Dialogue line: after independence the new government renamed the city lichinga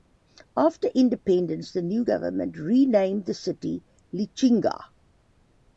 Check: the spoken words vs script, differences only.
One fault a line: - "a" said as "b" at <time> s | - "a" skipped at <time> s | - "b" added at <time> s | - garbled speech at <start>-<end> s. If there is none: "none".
none